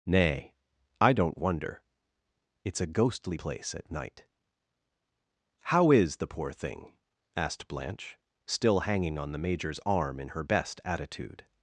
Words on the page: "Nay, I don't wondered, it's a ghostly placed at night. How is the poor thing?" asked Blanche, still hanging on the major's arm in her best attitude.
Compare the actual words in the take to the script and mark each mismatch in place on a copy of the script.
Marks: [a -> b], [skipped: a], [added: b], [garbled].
"Nay, I don't [wondered, -> wonder] it's a ghostly [placed -> place] at night. How is the poor thing?" asked Blanche, still hanging on the major's arm in her best attitude.